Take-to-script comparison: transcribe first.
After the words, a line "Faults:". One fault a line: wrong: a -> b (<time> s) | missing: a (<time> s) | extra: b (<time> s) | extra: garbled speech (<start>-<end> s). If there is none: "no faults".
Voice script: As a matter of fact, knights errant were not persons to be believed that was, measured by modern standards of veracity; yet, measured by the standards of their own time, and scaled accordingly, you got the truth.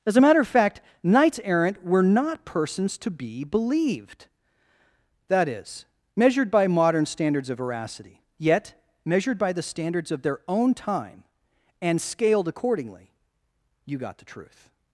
As a matter of fact, knights errant were not persons to be believed that is, measured by modern standards of veracity; yet, measured by the standards of their own time, and scaled accordingly, you got the truth.
Faults:
wrong: was -> is (5.5 s)